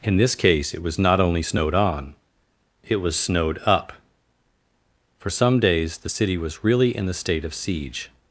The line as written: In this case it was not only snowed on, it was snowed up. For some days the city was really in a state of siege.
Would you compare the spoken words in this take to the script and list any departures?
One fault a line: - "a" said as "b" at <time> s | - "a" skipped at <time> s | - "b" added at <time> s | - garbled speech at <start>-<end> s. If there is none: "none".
- "a" said as "the" at 7.1 s